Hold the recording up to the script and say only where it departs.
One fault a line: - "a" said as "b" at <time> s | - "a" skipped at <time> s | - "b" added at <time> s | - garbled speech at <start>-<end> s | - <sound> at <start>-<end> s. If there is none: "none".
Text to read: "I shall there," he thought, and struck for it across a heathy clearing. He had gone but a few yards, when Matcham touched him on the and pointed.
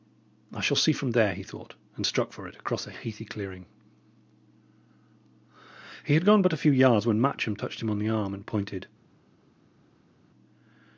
- "see from" added at 0.8 s
- "arm" added at 8.1 s